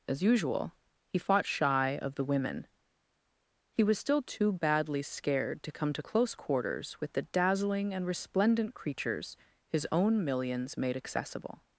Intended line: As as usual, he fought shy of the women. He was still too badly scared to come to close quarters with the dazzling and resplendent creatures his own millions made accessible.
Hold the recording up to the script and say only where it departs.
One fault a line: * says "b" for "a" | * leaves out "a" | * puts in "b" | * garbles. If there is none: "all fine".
* leaves out "as"